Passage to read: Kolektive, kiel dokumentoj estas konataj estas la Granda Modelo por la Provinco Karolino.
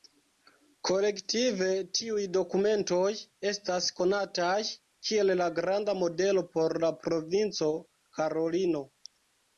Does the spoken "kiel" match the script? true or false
false